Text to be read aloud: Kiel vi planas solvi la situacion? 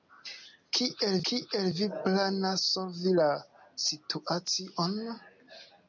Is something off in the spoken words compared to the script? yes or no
yes